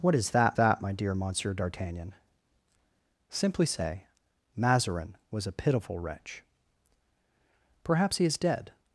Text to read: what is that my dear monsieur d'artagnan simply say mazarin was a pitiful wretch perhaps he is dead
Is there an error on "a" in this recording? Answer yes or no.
no